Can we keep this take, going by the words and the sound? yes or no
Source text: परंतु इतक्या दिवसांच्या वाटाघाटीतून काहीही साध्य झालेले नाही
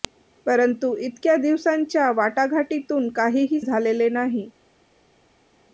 no